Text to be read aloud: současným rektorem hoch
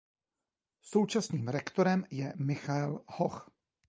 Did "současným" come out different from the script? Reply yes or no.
no